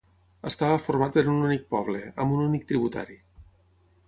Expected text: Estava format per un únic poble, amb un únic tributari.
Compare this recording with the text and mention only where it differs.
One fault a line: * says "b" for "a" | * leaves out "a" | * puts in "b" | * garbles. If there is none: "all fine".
all fine